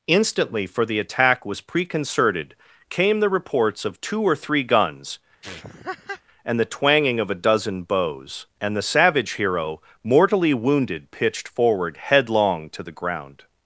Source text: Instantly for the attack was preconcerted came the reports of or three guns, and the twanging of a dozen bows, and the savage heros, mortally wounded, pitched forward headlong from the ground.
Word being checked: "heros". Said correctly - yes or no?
no